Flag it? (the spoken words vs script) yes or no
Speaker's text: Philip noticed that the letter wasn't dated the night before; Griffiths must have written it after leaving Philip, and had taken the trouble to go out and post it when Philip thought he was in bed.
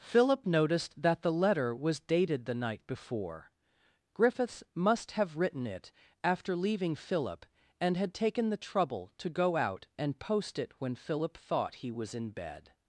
yes